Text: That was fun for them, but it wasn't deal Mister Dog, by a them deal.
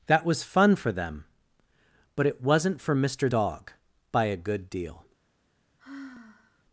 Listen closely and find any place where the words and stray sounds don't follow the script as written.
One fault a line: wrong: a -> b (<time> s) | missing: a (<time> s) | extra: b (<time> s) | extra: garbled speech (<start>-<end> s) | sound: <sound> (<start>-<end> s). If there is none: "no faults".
wrong: deal -> for (2.8 s)
wrong: them -> good (4.4 s)
sound: sigh (5.8-6.6 s)